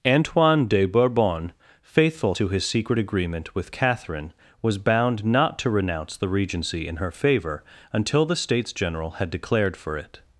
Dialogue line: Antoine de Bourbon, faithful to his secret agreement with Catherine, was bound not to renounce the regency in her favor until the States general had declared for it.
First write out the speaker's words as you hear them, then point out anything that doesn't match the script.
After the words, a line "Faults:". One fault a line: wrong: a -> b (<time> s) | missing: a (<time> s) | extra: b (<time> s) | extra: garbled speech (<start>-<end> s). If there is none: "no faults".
Antoine de Bourbon, faithful to his secret agreement with Catherine, was bound not to renounce the regency in her favor until the States general had declared for it.
Faults:
no faults